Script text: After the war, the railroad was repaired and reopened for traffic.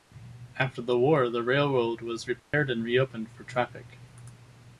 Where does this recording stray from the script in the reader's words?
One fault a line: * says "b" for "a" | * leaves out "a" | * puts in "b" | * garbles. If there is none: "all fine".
all fine